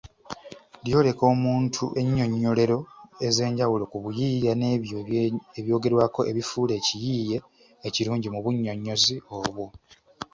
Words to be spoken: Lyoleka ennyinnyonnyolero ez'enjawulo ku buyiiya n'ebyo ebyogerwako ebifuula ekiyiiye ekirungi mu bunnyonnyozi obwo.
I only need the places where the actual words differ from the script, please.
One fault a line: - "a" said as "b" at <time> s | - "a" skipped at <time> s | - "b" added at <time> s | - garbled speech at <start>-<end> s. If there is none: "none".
- "omuntu" added at 1.3 s